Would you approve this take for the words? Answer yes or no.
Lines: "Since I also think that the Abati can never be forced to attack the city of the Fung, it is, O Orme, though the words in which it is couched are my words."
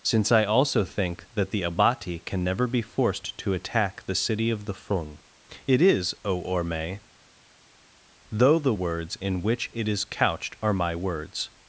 yes